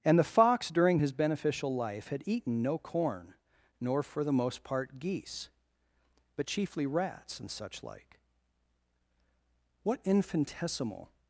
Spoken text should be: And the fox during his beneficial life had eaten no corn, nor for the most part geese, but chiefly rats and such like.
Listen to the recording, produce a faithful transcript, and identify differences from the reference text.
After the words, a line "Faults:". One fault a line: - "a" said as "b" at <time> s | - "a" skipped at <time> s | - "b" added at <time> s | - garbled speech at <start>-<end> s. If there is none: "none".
And the fox during his beneficial life had eaten no corn, nor for the most part geese, but chiefly rats and such like. What infinitesimal
Faults:
- "What infinitesimal" added at 9.8 s